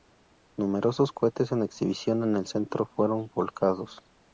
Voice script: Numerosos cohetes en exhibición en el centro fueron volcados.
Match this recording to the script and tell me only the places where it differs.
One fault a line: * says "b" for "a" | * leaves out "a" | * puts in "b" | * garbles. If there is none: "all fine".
all fine